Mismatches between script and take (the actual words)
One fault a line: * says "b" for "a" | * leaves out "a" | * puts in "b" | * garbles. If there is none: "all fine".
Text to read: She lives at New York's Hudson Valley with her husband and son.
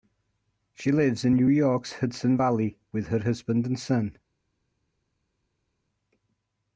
* says "in" for "at"